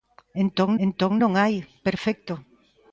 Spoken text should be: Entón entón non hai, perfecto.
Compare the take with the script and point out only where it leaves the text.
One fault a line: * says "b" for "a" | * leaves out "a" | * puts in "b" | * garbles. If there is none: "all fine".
all fine